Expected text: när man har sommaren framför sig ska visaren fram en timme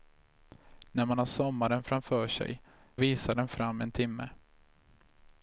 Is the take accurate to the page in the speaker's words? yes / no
no